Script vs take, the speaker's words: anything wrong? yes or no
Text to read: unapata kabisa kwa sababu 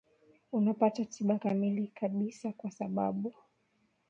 yes